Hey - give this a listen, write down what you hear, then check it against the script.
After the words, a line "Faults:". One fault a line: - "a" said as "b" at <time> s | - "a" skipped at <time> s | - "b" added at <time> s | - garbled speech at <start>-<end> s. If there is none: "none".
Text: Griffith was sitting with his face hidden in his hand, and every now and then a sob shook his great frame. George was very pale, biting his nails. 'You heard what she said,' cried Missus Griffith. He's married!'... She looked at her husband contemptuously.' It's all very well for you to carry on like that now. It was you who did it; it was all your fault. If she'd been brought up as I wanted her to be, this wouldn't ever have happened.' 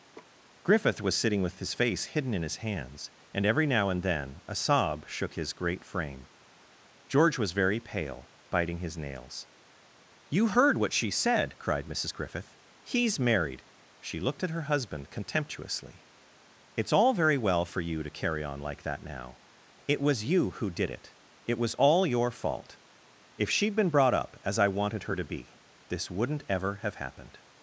Griffith was sitting with his face hidden in his hands, and every now and then a sob shook his great frame. George was very pale, biting his nails. 'You heard what she said,' cried Missus Griffith. He's married!'... She looked at her husband contemptuously.' It's all very well for you to carry on like that now. It was you who did it; it was all your fault. If she'd been brought up as I wanted her to be, this wouldn't ever have happened.'
Faults:
- "hand" said as "hands" at 2.6 s